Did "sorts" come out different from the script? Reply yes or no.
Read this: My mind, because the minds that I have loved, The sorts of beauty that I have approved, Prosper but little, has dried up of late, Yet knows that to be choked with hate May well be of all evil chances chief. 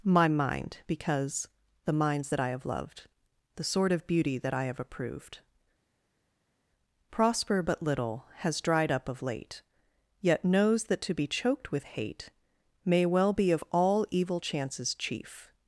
yes